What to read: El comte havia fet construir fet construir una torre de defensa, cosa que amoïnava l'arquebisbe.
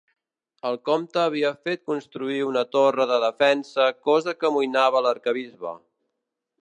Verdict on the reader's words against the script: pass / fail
fail